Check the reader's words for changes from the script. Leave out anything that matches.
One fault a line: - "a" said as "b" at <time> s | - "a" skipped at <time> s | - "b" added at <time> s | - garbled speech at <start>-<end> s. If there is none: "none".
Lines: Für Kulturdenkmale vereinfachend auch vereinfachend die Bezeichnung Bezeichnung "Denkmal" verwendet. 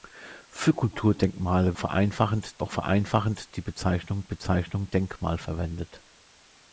none